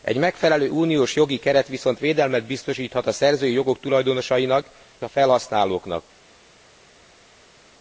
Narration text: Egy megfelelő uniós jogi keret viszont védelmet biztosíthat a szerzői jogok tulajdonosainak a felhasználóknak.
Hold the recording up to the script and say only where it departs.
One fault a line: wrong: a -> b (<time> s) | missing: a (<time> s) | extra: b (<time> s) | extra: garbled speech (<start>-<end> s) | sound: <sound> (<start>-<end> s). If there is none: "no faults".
no faults